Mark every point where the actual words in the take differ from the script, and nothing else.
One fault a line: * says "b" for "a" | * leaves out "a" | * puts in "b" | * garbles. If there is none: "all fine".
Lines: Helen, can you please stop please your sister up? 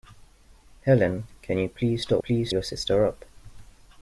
all fine